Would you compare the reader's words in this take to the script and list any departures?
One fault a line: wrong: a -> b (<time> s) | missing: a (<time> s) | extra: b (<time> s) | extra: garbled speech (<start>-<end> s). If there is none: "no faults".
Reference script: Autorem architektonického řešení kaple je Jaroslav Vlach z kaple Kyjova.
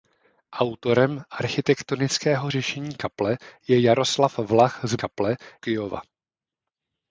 no faults